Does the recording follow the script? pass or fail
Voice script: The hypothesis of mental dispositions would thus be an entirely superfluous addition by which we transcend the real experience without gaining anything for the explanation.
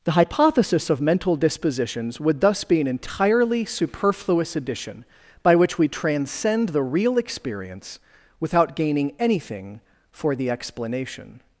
pass